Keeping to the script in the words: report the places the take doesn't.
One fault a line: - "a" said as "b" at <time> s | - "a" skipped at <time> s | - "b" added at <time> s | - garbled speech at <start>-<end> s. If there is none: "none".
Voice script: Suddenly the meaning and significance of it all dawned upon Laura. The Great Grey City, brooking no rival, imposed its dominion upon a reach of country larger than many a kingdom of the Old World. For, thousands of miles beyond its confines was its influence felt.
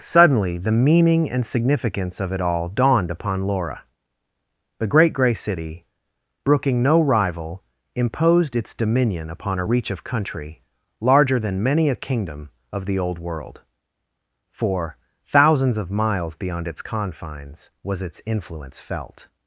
none